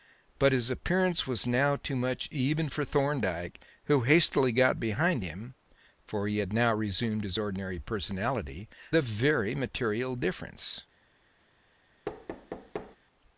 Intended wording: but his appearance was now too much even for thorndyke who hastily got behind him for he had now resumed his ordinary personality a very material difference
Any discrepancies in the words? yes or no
no